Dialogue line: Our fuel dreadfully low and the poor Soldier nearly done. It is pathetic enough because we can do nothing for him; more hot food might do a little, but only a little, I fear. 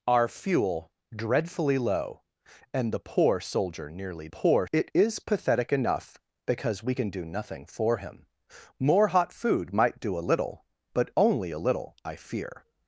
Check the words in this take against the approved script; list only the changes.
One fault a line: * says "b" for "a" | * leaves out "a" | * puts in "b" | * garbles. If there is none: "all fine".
* says "poor" for "done"